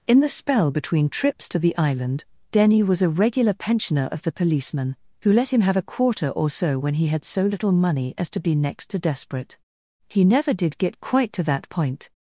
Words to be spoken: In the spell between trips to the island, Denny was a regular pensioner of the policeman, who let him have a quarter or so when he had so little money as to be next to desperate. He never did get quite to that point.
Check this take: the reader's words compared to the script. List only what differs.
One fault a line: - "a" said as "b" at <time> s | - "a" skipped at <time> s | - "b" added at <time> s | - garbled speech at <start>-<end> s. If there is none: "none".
none